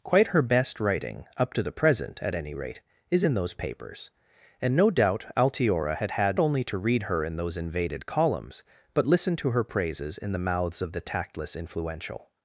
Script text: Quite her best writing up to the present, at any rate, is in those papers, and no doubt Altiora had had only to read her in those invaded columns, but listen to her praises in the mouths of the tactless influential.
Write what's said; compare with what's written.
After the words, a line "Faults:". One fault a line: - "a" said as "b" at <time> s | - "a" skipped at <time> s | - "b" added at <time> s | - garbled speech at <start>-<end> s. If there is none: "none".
Quite her best writing up to the present, at any rate, is in those papers, and no doubt Altiora had had only to read her in those invaded columns, but listen to her praises in the mouths of the tactless influential.
Faults:
none